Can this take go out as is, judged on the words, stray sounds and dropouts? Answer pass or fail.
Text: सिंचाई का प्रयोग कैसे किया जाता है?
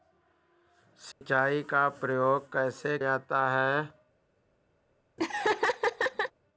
fail